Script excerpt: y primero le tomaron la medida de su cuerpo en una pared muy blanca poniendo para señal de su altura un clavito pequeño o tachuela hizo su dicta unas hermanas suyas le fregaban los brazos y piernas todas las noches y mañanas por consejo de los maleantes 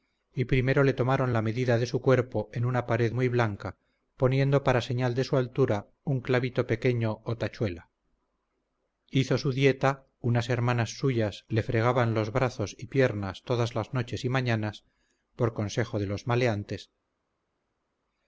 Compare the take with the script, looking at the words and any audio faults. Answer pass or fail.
pass